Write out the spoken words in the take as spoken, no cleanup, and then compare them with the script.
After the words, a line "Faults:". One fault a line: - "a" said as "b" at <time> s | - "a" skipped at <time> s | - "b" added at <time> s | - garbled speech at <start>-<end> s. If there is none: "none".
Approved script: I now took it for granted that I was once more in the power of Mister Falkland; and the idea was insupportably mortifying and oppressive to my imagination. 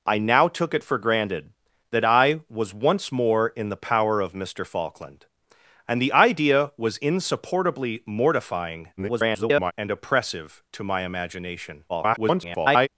I now took it for granted that I was once more in the power of Mister Falkland; and the idea was insupportably mortifying [garbled] and oppressive to my imagination. [garbled]
Faults:
- garbled speech at 9.0-9.7 s
- garbled speech at 11.9-12.9 s